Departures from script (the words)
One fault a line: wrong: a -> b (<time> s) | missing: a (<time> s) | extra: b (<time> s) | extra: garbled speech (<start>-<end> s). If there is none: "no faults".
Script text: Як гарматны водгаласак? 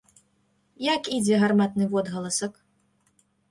extra: ідзе (1.2 s)